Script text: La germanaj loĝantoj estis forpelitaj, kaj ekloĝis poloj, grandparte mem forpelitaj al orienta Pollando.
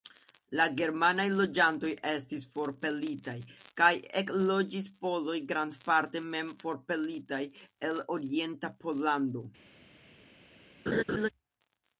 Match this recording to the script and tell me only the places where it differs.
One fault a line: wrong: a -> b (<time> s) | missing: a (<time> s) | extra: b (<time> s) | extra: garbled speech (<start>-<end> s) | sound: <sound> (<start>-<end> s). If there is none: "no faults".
wrong: al -> el (7.9 s)
sound: laugh (10.9-11.3 s)